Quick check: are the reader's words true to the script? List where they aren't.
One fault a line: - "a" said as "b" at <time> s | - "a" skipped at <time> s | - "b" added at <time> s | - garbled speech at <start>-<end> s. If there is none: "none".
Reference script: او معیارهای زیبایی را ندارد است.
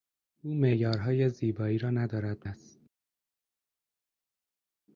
none